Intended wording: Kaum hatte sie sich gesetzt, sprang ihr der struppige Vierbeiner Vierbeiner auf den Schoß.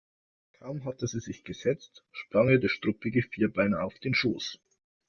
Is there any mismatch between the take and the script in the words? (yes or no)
yes